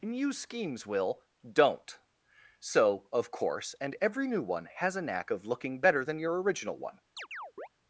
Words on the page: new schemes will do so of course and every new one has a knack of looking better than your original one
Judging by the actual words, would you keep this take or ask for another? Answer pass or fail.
fail